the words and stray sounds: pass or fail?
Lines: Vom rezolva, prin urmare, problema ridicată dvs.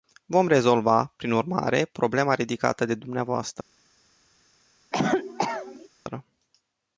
fail